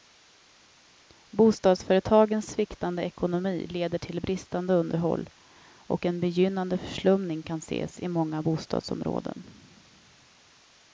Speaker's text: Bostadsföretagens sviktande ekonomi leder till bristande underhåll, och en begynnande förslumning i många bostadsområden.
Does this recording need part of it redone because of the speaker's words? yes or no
yes